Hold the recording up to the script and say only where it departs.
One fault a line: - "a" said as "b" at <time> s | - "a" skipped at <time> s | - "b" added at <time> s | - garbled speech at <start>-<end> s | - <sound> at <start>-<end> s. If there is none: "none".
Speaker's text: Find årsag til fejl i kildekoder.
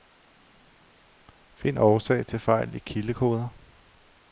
none